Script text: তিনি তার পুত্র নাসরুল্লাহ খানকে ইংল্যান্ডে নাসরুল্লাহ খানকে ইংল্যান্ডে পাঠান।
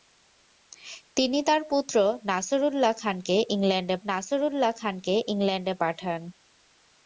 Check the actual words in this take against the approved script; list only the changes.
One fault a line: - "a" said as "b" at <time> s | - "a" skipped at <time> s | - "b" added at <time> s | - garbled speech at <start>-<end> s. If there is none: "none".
none